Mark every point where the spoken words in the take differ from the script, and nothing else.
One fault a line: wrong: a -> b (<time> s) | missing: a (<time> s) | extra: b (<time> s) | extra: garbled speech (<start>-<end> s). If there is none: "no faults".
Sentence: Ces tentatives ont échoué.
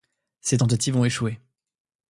no faults